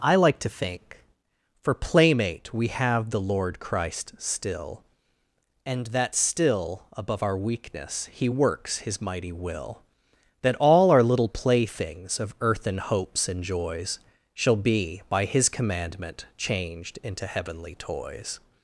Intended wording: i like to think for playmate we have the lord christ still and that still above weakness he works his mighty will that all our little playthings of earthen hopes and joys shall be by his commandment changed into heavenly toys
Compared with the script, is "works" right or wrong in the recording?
right